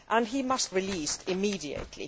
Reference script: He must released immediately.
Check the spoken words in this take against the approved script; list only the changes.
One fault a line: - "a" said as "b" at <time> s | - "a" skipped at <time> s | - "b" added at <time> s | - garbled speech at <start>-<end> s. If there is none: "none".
none